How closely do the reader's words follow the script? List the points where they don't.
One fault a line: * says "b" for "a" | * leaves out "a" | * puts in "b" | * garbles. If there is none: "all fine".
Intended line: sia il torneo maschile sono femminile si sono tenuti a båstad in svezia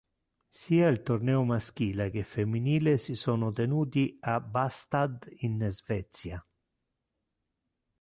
* says "che" for "sono"